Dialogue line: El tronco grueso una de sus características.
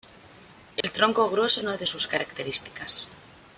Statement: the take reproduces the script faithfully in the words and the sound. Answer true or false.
false